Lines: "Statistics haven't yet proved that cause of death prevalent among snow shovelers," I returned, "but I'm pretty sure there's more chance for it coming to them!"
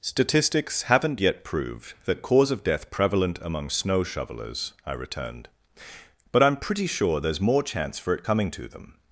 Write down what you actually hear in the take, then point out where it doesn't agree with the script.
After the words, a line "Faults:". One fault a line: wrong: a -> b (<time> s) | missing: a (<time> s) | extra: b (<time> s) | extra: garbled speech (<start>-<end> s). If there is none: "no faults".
"Statistics haven't yet proved that cause of death prevalent among snow shovelers," I returned, "but I'm pretty sure there's more chance for it coming to them!"
Faults:
no faults